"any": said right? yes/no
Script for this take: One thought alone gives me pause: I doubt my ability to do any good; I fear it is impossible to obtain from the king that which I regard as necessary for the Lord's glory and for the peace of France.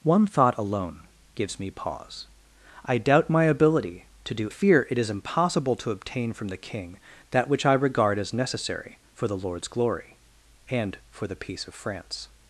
no